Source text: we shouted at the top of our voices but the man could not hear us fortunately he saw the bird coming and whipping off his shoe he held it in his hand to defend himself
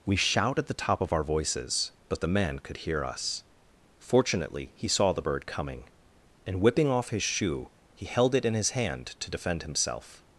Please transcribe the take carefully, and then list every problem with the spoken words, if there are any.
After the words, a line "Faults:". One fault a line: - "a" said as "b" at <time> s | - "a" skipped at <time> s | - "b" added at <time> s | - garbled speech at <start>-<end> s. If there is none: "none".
we shout at the top of our voices but the man could hear us fortunately he saw the bird coming and whipping off his shoe he held it in his hand to defend himself
Faults:
- "shouted" said as "shout" at 0.1 s
- "not" skipped at 2.8 s